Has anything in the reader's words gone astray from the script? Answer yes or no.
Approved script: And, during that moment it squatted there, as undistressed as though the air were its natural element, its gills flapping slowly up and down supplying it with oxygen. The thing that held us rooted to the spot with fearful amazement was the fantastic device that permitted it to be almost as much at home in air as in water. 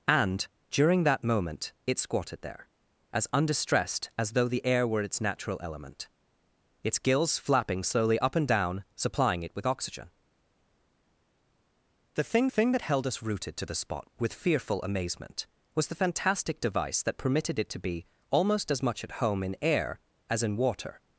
yes